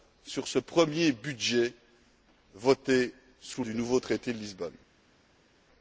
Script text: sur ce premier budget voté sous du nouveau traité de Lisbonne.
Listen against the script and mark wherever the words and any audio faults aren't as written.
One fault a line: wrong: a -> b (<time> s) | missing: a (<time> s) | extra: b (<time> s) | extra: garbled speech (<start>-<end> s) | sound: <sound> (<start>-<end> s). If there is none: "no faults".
no faults